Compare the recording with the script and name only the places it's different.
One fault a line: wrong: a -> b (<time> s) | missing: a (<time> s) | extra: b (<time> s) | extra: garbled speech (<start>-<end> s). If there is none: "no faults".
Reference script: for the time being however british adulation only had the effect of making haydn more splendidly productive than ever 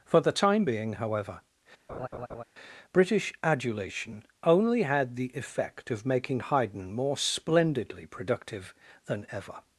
no faults